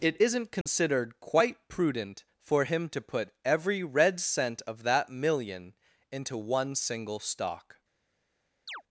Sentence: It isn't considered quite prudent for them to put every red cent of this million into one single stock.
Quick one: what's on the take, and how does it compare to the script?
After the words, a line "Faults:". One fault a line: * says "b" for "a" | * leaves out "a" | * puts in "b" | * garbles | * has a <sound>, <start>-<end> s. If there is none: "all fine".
It isn't considered quite prudent for him to put every red cent of that million into one single stock.
Faults:
* has a dropout, 0.6-0.7 s
* says "him" for "them"
* says "that" for "this"
* has a chirp, 8.7-8.8 s